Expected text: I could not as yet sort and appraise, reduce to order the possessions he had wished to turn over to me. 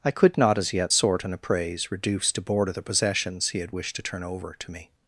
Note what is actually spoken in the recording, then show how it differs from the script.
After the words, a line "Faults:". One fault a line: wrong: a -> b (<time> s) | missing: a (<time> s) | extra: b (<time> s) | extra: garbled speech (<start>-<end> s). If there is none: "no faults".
I could not as yet sort and appraise, reduce to border the possessions he had wished to turn over to me.
Faults:
wrong: order -> border (2.4 s)